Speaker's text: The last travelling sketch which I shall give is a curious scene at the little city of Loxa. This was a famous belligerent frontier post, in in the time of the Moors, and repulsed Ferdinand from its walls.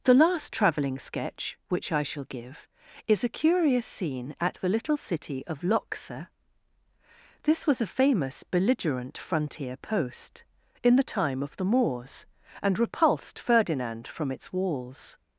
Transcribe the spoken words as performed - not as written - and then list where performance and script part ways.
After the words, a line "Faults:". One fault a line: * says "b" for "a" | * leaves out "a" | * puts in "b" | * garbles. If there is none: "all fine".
The last travelling sketch which I shall give is a curious scene at the little city of Loxa. This was a famous belligerent frontier post, in the time of the Moors, and repulsed Ferdinand from its walls.
Faults:
* leaves out "in"